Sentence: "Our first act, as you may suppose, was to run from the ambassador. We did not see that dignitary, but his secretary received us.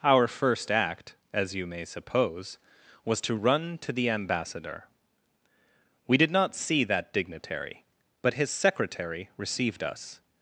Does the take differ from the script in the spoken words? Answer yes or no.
yes